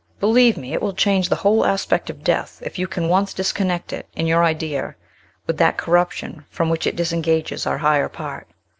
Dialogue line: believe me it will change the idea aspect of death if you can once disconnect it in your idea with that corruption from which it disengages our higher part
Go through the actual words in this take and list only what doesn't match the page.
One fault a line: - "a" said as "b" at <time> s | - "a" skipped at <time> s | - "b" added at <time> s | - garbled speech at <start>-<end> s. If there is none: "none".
- "idea" said as "whole" at 1.4 s